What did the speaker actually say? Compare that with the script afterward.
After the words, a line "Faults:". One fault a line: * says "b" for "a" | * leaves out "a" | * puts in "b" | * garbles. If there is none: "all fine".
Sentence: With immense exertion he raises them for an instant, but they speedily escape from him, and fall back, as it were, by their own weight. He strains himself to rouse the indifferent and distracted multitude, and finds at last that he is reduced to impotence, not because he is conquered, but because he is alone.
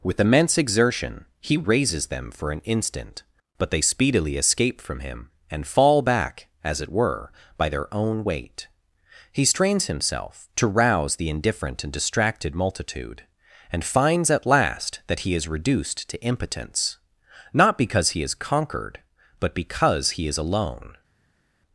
With immense exertion he raises them for an instant, but they speedily escape from him, and fall back, as it were, by their own weight. He strains himself to rouse the indifferent and distracted multitude, and finds at last that he is reduced to impotence, not because he is conquered, but because he is alone.
Faults:
all fine